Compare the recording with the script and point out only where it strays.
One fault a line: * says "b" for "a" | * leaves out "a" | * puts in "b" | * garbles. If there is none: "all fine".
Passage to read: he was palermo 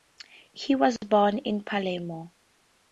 * puts in "born in"